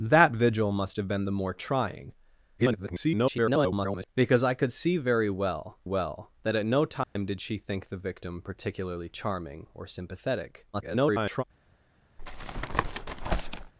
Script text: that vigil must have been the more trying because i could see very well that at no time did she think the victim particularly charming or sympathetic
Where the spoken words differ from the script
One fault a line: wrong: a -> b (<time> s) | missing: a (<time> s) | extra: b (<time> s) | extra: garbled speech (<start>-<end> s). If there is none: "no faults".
extra: garbled speech (2.6-4.1 s)
extra: well (5.8 s)
extra: garbled speech (10.7-11.4 s)